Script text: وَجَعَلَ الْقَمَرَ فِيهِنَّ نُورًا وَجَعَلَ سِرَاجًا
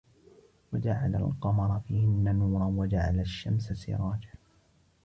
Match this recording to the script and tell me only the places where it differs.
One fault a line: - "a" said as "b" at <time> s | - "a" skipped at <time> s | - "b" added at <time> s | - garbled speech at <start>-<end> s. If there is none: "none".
- "الشَّمْسَ" added at 3.2 s